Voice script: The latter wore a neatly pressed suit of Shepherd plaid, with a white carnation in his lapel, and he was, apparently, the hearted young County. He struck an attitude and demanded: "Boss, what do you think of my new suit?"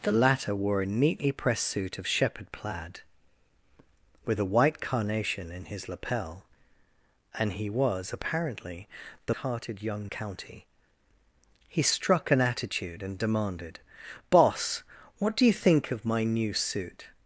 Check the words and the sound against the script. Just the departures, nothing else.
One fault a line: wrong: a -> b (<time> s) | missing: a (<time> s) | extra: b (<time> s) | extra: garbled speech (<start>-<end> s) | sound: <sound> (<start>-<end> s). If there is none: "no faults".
no faults